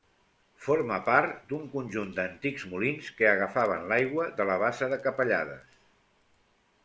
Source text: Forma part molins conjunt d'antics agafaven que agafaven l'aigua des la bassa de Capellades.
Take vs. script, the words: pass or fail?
fail